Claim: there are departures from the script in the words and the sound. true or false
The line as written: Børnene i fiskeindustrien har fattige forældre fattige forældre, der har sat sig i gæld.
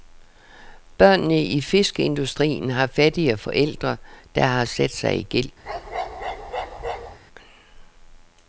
true